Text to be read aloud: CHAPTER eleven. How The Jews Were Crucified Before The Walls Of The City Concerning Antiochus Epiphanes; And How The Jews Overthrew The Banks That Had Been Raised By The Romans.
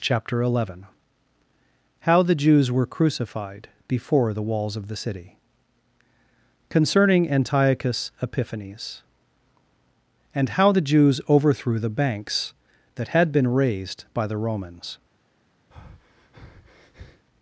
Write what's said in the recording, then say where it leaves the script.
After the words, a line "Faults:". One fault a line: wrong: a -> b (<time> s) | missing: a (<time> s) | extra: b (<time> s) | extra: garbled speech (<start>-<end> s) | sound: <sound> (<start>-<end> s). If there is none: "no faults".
CHAPTER eleven. How The Jews Were Crucified Before The Walls Of The City Concerning Antiochus Epiphanes; And How The Jews Overthrew The Banks That Had Been Raised By The Romans.
Faults:
sound: breath (15.7-17.3 s)